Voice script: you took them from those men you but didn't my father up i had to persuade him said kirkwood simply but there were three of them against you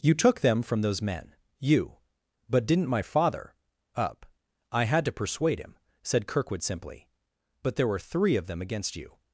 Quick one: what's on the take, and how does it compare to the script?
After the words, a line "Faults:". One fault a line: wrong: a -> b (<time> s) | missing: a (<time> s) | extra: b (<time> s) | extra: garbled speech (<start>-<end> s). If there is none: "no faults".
you took them from those men you but didn't my father up i had to persuade him said kirkwood simply but there were three of them against you
Faults:
no faults